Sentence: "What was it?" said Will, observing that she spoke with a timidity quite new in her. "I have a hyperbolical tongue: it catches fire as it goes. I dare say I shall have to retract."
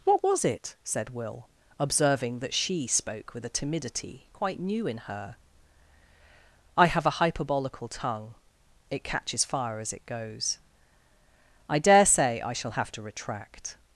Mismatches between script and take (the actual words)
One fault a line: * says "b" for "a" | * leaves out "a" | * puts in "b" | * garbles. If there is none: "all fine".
all fine